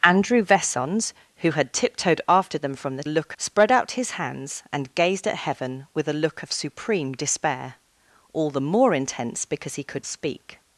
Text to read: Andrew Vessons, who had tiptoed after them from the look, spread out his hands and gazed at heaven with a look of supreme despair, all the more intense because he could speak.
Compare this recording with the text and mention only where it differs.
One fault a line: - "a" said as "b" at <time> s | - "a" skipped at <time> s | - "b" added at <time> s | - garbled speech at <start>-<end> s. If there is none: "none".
none